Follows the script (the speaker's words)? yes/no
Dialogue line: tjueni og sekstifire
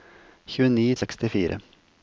yes